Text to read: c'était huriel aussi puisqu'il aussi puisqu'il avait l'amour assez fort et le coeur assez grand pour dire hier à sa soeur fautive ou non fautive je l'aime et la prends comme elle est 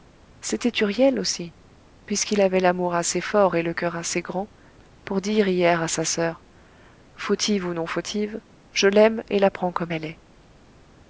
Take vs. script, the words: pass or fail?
fail